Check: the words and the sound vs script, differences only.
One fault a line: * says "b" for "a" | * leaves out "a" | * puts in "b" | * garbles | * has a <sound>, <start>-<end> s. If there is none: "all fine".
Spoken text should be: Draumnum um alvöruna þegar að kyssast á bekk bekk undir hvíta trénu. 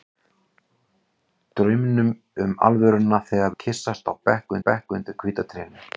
all fine